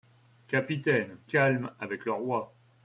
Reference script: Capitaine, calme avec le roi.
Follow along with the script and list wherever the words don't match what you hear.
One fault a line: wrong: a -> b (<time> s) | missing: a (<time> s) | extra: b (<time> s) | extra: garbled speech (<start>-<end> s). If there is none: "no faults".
no faults